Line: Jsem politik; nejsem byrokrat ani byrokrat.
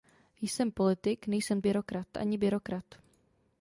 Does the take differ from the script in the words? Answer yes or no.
no